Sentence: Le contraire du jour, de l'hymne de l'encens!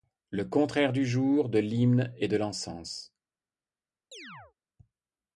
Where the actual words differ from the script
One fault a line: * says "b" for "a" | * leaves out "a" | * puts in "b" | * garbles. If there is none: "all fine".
* puts in "et"